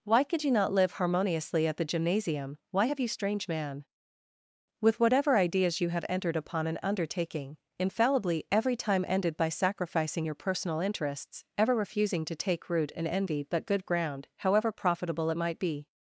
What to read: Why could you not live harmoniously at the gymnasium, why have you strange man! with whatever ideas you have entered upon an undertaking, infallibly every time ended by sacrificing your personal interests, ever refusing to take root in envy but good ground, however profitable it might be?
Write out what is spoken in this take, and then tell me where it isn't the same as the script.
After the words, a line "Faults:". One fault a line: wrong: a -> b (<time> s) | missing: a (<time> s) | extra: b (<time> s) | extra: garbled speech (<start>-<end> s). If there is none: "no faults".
Why could you not live harmoniously at the gymnasium, why have you strange man! with whatever ideas you have entered upon an undertaking, infallibly every time ended by sacrificing your personal interests, ever refusing to take root in envy but good ground, however profitable it might be?
Faults:
no faults